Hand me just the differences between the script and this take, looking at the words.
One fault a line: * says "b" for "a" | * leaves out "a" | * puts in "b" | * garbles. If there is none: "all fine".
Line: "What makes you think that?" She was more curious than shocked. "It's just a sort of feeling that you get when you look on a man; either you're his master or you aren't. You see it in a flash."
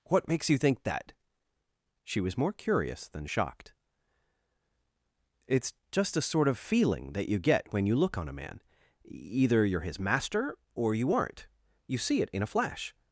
all fine